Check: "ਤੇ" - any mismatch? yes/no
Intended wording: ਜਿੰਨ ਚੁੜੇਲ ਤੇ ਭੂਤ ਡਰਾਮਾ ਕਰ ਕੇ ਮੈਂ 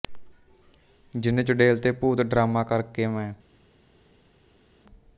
no